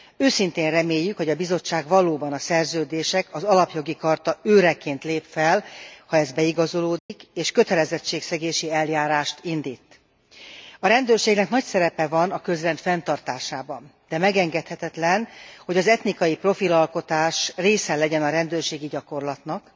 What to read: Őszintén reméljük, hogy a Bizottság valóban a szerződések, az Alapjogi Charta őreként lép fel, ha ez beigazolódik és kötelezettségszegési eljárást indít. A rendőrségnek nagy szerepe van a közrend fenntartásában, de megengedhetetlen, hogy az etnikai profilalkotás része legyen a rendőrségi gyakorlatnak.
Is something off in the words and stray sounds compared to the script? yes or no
yes